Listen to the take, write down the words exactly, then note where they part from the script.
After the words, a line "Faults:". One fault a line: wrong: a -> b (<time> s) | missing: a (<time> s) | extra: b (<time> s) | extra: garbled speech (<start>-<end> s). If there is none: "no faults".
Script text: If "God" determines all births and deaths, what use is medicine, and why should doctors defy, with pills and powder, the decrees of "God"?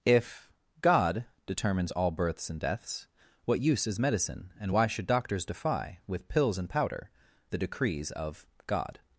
If "God" determines all births and deaths, what use is medicine, and why should doctors defy, with pills and powder, the decrees of "God"?
Faults:
no faults